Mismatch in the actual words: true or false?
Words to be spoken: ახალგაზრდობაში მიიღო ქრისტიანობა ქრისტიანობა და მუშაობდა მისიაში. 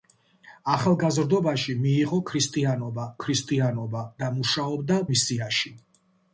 false